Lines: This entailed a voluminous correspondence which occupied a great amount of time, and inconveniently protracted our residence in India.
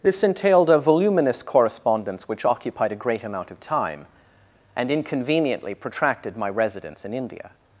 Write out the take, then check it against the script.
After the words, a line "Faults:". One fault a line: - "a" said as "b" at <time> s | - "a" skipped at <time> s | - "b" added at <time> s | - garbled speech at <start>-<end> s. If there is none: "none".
This entailed a voluminous correspondence which occupied a great amount of time, and inconveniently protracted my residence in India.
Faults:
- "our" said as "my" at 6.3 s